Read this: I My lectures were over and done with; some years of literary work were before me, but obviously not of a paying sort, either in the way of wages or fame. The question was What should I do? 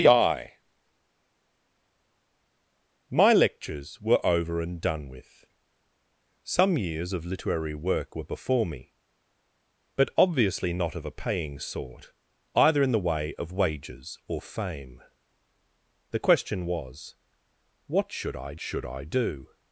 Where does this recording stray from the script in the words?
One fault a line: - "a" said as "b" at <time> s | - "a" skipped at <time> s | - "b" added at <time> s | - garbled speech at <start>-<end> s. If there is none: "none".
- "should I" added at 18.6 s